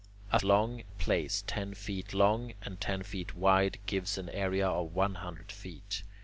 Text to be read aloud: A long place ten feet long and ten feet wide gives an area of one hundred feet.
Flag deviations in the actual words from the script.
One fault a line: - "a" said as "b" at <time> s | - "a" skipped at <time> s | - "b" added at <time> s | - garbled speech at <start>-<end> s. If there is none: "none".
none